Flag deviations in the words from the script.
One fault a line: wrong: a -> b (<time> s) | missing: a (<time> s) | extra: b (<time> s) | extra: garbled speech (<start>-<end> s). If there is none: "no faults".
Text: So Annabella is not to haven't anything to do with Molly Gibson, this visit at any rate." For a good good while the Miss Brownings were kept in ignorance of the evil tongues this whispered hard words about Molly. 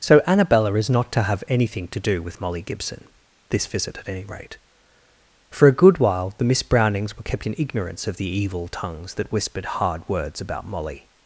wrong: haven't -> have (1.2 s)
missing: good (6.0 s)
wrong: this -> that (9.1 s)